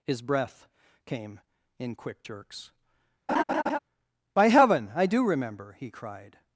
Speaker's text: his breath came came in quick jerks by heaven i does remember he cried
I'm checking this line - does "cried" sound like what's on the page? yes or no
yes